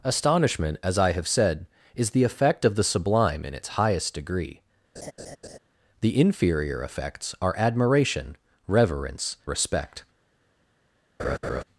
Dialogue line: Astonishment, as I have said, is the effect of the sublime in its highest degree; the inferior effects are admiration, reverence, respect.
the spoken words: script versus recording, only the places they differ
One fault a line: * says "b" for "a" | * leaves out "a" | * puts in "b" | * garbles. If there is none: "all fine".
all fine